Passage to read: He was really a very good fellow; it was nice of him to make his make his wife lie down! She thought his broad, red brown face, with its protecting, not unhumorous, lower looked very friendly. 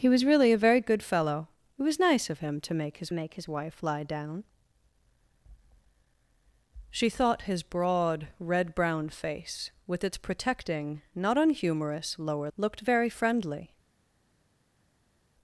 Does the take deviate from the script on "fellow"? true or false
false